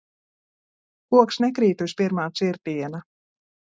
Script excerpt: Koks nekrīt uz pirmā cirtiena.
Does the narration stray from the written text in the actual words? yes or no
no